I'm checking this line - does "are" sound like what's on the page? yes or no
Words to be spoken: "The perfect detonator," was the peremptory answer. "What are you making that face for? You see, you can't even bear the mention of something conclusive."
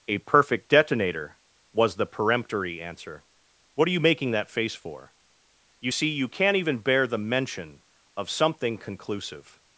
yes